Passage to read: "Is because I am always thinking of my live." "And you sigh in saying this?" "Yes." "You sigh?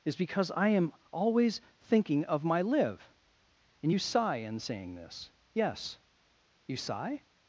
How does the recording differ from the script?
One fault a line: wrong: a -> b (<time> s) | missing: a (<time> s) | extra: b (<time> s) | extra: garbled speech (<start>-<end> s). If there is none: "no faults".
no faults